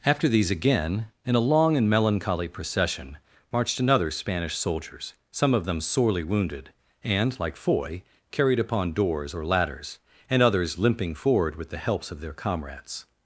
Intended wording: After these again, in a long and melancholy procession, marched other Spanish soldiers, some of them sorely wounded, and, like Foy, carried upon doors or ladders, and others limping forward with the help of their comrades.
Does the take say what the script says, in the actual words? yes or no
no